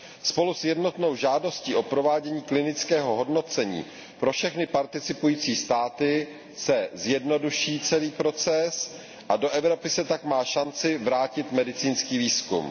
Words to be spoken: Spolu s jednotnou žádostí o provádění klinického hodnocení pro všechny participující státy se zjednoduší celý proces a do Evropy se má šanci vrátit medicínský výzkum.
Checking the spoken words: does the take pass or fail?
fail